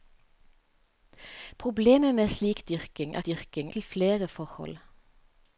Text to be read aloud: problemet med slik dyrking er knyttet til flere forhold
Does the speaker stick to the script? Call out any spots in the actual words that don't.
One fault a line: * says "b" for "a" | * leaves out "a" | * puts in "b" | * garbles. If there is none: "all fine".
* says "dyrking" for "knyttet"